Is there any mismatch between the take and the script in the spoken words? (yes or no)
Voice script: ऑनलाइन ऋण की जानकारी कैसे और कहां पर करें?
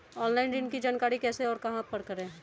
no